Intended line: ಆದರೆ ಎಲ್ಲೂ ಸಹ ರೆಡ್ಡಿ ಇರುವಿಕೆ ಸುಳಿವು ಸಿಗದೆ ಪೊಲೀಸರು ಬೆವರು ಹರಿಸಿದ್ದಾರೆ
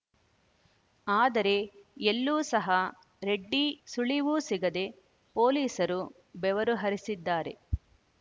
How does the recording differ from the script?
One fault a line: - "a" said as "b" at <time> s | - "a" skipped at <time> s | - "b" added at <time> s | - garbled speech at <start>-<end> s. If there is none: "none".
- "ಇರುವಿಕೆ" skipped at 3.6 s